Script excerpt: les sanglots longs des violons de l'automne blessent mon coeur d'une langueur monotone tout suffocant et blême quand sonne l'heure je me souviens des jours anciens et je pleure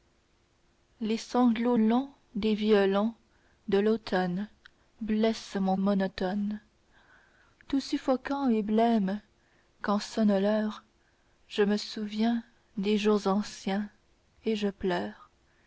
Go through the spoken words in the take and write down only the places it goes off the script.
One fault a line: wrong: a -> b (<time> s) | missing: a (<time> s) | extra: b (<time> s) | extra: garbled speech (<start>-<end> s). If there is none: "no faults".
missing: coeur d'une langueur (5.8 s)